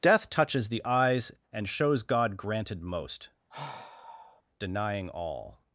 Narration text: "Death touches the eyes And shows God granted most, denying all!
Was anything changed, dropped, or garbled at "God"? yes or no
no